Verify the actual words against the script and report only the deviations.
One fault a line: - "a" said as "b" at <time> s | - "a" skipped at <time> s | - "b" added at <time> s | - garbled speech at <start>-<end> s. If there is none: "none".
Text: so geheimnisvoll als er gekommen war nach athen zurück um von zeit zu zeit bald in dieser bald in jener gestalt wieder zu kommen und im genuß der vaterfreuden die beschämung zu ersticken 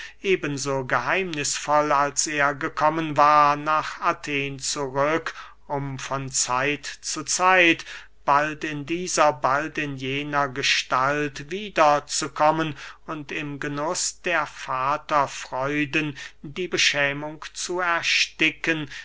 none